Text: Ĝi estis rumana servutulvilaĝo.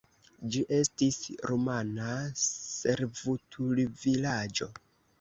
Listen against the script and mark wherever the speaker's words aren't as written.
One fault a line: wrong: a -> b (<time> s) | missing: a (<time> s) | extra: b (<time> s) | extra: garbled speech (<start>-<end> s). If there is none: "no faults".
no faults